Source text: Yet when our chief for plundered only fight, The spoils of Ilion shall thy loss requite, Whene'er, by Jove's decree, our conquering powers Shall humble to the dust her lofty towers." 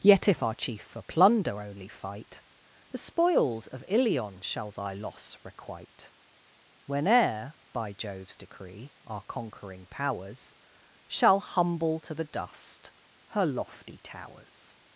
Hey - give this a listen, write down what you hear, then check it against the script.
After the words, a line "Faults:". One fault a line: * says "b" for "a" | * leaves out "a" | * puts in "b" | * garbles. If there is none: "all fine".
Yet if our chief for plunder only fight, The spoils of Ilion shall thy loss requite, Whene'er, by Jove's decree, our conquering powers Shall humble to the dust her lofty towers."
Faults:
* says "if" for "when"
* says "plunder" for "plundered"